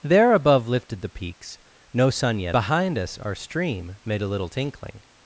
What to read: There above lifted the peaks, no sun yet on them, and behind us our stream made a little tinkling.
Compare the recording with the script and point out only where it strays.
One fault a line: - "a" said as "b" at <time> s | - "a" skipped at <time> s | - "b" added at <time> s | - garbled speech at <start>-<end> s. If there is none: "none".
- "on them and" skipped at 2.5 s